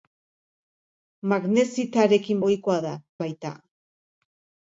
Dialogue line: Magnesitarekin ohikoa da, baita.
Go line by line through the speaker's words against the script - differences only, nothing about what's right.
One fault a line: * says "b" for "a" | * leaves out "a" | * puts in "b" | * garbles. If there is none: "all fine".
all fine